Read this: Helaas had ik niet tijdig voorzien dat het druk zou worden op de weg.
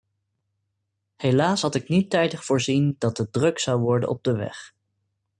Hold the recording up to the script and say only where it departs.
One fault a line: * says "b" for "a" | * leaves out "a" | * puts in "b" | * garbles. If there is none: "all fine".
all fine